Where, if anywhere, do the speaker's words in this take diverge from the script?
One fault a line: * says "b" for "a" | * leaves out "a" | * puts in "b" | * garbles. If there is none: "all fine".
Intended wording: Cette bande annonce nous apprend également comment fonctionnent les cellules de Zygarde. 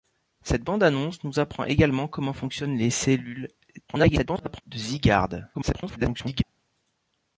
* garbles
* garbles